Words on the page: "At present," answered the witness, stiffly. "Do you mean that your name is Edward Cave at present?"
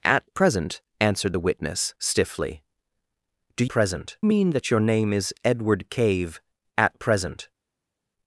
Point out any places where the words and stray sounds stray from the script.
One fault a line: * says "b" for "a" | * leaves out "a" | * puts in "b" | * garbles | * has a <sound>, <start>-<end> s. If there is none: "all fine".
* says "present" for "you"